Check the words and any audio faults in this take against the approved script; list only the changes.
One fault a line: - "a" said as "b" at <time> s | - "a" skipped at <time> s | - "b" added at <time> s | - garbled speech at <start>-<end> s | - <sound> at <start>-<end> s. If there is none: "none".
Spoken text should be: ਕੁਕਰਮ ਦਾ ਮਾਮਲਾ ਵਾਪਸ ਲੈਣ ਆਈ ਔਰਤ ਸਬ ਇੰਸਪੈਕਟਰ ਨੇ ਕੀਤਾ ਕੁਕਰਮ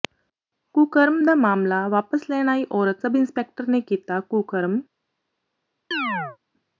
- chirp at 5.9-6.4 s